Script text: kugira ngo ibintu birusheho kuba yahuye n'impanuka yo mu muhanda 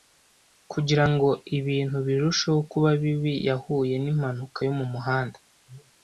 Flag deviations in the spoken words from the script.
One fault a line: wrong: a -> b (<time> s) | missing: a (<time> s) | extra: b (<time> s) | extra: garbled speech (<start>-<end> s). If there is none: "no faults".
extra: bibi (3.0 s)